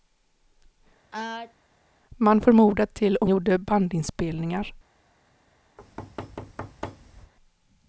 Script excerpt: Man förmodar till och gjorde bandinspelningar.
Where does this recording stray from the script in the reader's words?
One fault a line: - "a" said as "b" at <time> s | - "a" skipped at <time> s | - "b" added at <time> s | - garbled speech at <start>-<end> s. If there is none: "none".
none